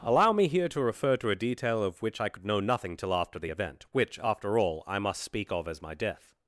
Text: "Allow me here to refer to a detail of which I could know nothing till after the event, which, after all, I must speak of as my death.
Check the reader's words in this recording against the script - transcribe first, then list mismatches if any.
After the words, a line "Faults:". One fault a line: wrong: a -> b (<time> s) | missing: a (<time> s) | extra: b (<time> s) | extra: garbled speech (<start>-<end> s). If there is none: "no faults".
"Allow me here to refer to a detail of which I could know nothing till after the event, which, after all, I must speak of as my death.
Faults:
no faults